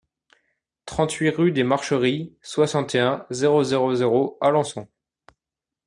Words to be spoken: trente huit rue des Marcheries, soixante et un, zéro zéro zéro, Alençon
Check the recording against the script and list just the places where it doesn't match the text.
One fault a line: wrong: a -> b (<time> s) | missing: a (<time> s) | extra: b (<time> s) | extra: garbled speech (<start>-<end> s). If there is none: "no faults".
no faults